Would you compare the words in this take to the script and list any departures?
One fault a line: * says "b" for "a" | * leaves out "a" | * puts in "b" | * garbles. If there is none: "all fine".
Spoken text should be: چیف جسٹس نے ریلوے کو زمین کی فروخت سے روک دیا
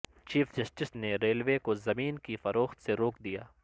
all fine